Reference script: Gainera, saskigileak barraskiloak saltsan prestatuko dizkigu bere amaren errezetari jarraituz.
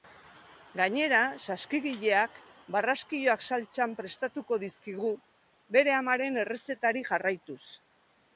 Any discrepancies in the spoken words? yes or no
no